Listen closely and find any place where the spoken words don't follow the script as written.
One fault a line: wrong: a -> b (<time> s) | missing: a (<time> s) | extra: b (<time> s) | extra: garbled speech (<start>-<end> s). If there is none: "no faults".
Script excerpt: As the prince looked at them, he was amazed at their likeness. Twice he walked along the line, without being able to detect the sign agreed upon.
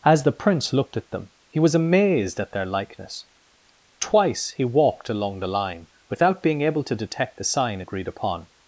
no faults